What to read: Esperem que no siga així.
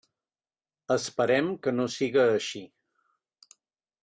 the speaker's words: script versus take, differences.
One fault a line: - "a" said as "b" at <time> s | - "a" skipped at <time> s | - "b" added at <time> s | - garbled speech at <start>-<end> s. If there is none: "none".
none